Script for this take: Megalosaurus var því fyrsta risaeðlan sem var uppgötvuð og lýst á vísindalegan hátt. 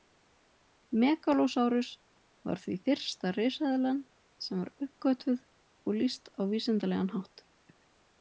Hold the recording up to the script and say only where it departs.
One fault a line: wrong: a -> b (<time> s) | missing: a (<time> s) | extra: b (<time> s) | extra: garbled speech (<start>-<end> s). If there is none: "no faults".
no faults